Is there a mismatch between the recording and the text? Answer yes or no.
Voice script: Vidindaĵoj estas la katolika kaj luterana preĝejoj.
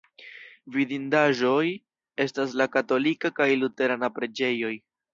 no